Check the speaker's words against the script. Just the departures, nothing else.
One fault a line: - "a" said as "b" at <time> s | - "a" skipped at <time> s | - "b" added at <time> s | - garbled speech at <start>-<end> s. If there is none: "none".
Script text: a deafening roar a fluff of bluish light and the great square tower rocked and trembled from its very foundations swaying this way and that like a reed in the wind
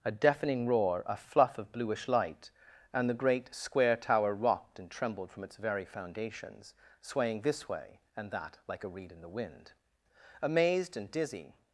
- "amazed and dizzy" added at 10.4 s